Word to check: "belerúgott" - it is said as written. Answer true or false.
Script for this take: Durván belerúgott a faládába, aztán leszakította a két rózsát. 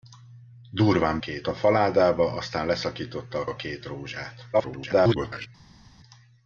false